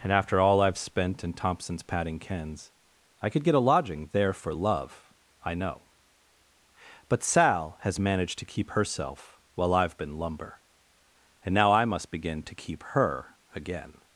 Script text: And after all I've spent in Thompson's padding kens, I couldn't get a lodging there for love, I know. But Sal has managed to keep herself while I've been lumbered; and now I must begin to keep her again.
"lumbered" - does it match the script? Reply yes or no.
no